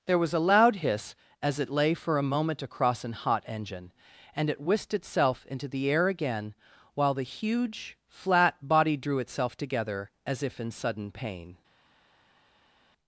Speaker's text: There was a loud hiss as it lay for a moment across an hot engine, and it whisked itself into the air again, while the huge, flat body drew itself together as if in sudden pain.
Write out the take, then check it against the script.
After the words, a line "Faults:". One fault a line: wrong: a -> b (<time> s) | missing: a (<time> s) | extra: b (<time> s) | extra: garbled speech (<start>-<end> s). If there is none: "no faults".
There was a loud hiss as it lay for a moment across an hot engine, and it whisked itself into the air again, while the huge, flat body drew itself together as if in sudden pain.
Faults:
no faults